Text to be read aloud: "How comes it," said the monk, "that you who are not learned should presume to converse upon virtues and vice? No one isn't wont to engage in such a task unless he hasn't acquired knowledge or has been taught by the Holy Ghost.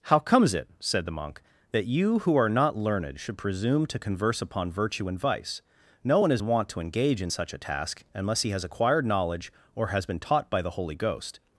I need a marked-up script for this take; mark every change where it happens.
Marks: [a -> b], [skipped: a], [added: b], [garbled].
"How comes it," said the monk, "that you who are not learned should presume to converse upon [virtues -> virtue] and vice? No one [isn't -> is] wont to engage in such a task unless he [hasn't -> has] acquired knowledge or has been taught by the Holy Ghost.